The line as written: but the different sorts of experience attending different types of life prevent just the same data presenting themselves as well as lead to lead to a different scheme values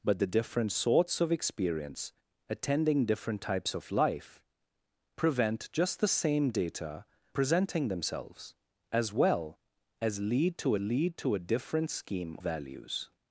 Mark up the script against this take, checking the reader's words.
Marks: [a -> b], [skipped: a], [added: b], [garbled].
but the different sorts of experience attending different types of life prevent just the same data presenting themselves as well as lead to lead to a different scheme values